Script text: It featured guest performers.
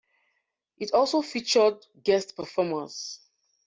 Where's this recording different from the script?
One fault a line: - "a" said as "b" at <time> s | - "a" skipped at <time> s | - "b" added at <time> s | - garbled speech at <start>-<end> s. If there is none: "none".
- "also" added at 0.9 s